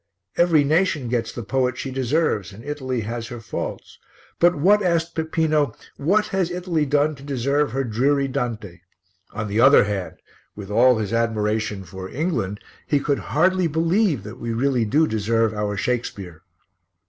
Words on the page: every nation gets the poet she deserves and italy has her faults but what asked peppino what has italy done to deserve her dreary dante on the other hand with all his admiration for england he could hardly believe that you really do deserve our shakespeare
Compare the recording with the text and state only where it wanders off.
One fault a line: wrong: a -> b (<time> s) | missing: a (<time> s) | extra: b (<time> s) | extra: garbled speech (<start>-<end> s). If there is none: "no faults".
wrong: you -> we (14.4 s)